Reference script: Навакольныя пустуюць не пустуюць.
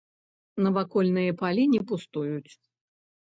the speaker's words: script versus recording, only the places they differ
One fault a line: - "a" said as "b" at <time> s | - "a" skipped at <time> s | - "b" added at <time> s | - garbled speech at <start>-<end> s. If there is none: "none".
- "пустуюць" said as "палі" at 1.4 s